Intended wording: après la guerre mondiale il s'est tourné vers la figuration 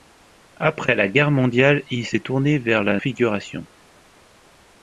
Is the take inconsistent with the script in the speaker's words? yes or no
no